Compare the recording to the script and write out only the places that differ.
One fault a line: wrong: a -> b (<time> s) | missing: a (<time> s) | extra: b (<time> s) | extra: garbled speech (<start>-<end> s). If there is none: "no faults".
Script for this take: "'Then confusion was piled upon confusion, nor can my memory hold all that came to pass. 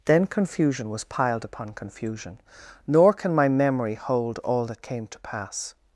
no faults